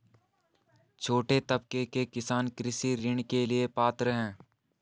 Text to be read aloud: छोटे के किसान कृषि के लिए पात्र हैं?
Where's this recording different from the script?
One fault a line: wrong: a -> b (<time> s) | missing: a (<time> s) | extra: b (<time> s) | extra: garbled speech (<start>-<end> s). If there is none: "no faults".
extra: तबके (1.4 s)
extra: ऋण (3.0 s)